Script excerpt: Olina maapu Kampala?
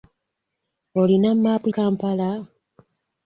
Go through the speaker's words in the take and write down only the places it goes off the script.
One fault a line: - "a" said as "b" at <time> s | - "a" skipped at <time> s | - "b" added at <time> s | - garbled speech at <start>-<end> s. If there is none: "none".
none